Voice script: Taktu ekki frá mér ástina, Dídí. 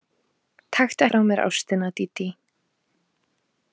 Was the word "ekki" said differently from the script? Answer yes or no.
yes